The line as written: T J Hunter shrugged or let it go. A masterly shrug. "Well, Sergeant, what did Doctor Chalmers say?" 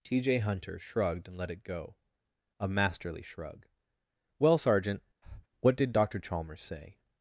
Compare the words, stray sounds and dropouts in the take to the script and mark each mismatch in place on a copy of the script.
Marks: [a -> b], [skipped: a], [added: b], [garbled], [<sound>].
T J Hunter shrugged [or -> and] let it go. A masterly shrug. "Well, Sergeant, [breath] what did Doctor Chalmers say?"